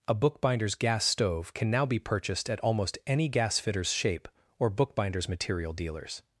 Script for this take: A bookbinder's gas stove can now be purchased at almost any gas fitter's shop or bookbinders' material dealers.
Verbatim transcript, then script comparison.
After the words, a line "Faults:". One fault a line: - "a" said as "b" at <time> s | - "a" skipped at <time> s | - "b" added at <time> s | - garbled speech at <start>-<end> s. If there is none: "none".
A bookbinder's gas stove can now be purchased at almost any gas fitter's shape or bookbinders' material dealers.
Faults:
- "shop" said as "shape" at 3.9 s